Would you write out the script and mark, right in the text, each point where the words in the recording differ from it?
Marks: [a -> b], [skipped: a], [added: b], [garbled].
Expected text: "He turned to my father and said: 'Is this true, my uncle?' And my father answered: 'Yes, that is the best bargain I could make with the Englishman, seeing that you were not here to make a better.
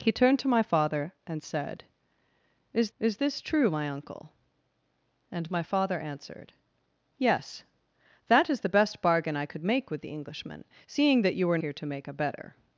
"He turned to my father and said: 'Is [added: is] this true, my uncle?' And my father answered: 'Yes, that is the best bargain I could make with the Englishman, seeing that you were [skipped: not] here to make a better.